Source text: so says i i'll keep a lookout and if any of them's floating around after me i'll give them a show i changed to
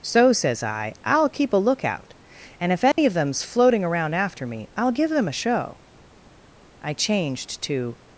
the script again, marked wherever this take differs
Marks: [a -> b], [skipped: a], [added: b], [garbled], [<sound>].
so says i i'll keep a lookout and if any [dropout] of them's floating around after me i'll give them a show i changed to